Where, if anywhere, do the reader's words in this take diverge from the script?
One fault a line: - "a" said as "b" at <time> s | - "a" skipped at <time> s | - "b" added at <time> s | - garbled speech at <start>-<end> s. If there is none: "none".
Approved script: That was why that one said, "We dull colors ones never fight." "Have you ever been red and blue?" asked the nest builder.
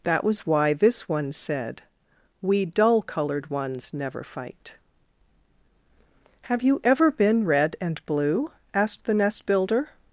- "that" said as "this" at 0.7 s
- "colors" said as "colored" at 3.0 s